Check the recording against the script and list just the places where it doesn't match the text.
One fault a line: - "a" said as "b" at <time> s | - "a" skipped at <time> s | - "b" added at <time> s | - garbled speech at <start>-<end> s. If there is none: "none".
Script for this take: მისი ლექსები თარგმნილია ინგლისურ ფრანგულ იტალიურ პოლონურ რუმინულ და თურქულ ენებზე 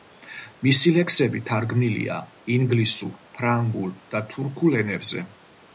- "იტალიურ პოლონურ რუმინულ" skipped at 3.9 s